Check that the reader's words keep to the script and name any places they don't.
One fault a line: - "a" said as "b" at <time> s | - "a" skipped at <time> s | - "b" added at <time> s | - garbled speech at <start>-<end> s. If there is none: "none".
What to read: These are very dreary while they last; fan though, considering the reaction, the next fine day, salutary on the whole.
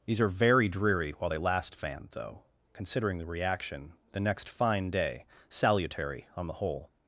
none